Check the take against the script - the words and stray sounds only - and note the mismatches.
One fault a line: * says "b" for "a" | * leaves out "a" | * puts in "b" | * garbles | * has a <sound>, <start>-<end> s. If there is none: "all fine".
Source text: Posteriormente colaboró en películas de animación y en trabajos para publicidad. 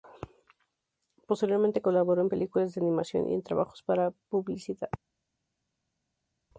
all fine